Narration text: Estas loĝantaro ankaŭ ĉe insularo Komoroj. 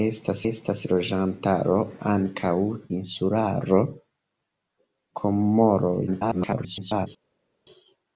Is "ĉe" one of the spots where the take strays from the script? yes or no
yes